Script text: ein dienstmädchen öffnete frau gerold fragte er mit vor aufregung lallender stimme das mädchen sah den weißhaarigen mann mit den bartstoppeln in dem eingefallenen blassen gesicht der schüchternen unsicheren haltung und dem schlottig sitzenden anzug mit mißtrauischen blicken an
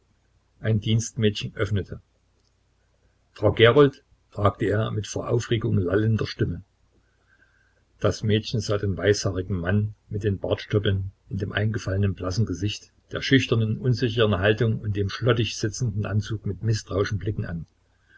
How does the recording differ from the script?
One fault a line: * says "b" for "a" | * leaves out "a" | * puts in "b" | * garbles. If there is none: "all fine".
all fine